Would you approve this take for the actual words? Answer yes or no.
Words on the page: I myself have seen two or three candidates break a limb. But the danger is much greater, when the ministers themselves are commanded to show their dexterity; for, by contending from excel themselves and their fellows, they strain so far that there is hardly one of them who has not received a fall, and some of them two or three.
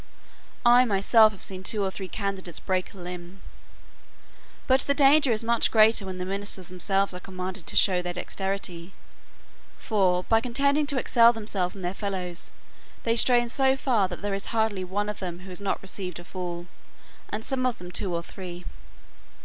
no